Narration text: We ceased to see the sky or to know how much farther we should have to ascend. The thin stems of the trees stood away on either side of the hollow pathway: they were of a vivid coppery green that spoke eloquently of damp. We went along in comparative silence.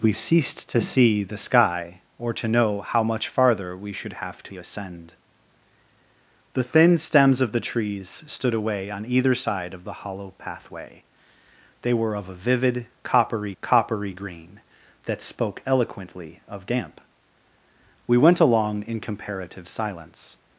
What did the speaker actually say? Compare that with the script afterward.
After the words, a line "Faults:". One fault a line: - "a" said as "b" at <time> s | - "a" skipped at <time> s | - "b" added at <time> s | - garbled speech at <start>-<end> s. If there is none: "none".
We ceased to see the sky or to know how much farther we should have to ascend. The thin stems of the trees stood away on either side of the hollow pathway: they were of a vivid coppery coppery green that spoke eloquently of damp. We went along in comparative silence.
Faults:
- "coppery" added at 13.6 s